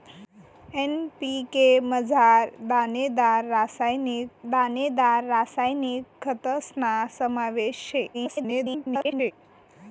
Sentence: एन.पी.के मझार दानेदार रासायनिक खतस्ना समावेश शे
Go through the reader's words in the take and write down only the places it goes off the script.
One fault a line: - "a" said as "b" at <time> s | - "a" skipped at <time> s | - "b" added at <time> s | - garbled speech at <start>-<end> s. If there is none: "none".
- "दानेदार रासायनिक" added at 4.5 s
- garbled speech at 8.1-9.3 s